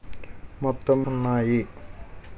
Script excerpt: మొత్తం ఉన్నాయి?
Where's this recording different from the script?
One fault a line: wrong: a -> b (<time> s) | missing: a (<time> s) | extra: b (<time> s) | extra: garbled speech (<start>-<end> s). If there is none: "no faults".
no faults